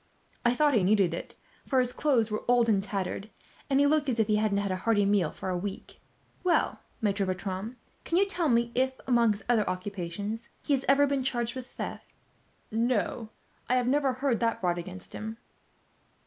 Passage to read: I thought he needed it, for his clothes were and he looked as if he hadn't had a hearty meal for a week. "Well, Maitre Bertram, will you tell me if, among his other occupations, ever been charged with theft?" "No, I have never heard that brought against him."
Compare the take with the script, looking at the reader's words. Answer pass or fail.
fail